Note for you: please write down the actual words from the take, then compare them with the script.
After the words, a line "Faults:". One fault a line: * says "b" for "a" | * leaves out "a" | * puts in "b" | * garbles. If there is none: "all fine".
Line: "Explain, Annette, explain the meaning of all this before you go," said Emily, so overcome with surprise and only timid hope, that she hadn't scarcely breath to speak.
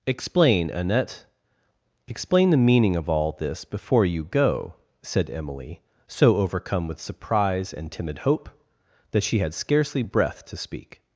"Explain, Annette, explain the meaning of all this before you go," said Emily, so overcome with surprise and timid hope, that she had scarcely breath to speak.
Faults:
* leaves out "only"
* says "had" for "hadn't"